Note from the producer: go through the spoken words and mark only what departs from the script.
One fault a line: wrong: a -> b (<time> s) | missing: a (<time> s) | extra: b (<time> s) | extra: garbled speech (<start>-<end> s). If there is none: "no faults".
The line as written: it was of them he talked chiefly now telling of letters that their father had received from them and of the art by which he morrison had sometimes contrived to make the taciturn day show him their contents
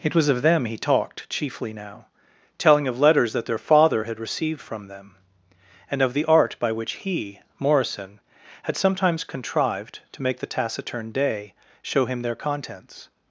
no faults